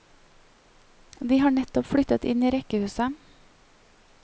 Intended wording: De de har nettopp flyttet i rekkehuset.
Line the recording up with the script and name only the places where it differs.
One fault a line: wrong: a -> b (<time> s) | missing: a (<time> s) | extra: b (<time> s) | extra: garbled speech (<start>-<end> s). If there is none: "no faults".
missing: de (1.4 s)
extra: inn (2.3 s)